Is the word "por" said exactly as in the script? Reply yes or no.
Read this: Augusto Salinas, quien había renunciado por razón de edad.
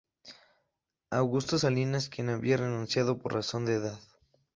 yes